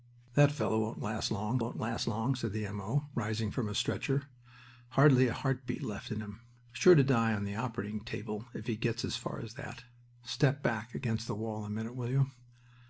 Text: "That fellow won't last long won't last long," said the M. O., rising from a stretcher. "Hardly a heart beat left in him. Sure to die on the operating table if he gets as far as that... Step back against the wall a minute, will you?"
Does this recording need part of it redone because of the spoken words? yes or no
no